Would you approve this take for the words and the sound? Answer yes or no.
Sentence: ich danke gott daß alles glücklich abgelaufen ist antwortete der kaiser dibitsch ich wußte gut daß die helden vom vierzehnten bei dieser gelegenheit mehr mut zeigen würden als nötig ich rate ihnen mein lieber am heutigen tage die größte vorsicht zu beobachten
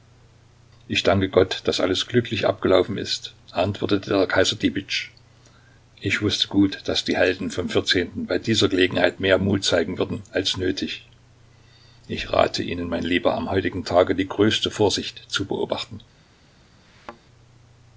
no